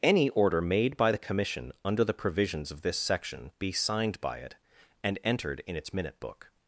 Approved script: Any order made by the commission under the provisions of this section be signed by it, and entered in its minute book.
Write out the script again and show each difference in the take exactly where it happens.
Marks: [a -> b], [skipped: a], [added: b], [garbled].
Any order made by the commission under the provisions of this section be signed by it, and entered in its minute book.